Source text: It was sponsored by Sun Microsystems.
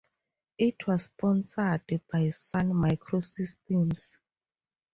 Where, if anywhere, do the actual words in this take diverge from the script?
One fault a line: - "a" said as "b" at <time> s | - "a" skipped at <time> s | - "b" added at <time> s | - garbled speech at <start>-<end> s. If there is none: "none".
none